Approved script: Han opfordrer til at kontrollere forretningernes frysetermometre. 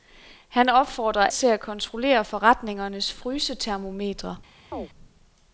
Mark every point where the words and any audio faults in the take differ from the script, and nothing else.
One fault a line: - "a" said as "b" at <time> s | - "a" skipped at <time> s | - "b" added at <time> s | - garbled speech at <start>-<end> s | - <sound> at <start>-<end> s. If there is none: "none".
- chirp at 4.7-4.9 s